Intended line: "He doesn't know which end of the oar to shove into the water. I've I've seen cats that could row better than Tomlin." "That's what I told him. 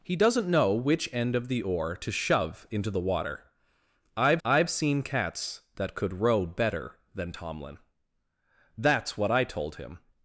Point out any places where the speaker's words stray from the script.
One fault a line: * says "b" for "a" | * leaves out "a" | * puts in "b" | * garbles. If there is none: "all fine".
all fine